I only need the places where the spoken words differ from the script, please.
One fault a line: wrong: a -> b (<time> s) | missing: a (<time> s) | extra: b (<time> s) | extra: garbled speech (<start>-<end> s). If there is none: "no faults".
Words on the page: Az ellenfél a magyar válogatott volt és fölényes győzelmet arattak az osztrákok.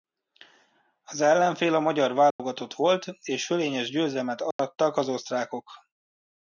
no faults